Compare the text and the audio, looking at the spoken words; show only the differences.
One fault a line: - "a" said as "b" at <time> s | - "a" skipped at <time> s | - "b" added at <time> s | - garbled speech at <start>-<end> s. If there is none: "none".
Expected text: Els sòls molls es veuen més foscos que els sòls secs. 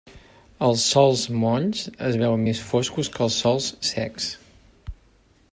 none